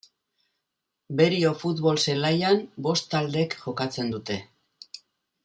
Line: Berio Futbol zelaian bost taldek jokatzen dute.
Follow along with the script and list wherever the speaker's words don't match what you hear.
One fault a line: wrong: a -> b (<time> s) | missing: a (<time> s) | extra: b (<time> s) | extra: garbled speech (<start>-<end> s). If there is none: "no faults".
no faults